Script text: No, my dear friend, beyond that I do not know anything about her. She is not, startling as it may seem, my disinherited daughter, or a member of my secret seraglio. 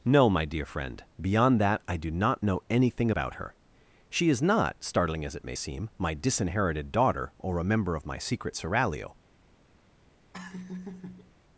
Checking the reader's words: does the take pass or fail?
pass